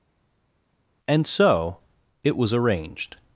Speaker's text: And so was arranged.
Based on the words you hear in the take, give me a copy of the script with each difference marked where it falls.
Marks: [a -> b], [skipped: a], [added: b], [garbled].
And so [added: it] was arranged.